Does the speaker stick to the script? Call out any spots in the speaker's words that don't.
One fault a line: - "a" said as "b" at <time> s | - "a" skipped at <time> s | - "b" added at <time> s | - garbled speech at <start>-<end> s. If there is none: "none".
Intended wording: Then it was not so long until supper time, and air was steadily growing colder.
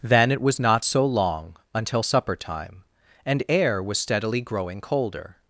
none